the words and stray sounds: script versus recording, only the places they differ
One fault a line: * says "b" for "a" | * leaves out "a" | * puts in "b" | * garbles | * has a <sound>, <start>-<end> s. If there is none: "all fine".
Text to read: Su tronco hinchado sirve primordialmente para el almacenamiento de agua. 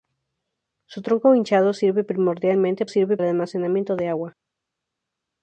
* says "sirve" for "para"